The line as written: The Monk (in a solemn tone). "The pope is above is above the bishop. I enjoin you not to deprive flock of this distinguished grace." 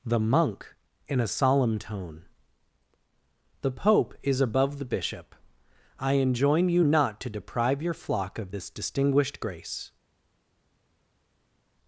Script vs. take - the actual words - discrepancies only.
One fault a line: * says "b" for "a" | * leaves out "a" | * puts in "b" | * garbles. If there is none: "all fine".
* leaves out "is above"
* puts in "your"